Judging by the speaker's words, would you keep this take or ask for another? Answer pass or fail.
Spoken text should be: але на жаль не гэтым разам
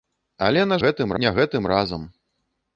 fail